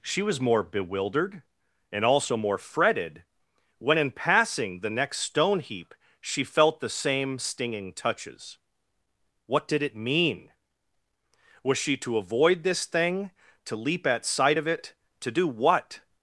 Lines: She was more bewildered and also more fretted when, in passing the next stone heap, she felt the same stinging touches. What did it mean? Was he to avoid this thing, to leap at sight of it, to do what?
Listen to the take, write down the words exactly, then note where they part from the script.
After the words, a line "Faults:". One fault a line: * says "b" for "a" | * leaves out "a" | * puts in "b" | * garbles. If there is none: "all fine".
She was more bewildered and also more fretted when, in passing the next stone heap, she felt the same stinging touches. What did it mean? Was she to avoid this thing, to leap at sight of it, to do what?
Faults:
* says "she" for "he"